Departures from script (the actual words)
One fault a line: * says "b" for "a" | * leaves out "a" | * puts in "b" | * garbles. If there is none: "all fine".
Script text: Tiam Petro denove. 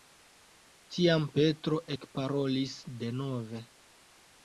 * puts in "ekparolis"